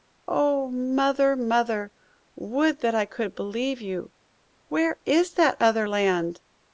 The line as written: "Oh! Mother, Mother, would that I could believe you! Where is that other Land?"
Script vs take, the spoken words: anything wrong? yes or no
no